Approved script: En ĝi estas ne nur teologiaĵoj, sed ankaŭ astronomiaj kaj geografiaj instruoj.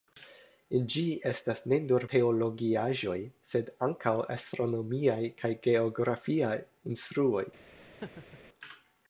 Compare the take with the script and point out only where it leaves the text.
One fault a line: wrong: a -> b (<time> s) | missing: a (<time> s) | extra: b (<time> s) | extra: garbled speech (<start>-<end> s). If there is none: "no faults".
no faults